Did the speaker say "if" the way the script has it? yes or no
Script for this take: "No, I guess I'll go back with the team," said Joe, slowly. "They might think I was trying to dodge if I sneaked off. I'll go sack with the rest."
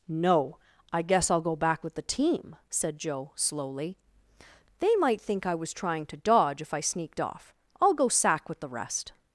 yes